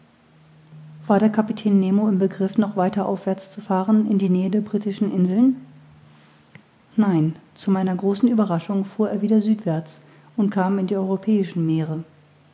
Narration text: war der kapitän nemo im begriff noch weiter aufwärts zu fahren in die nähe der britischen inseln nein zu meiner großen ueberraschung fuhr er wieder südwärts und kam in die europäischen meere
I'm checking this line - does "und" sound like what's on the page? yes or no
yes